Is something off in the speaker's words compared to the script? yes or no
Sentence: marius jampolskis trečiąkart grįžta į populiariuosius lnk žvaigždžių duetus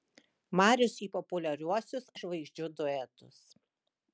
yes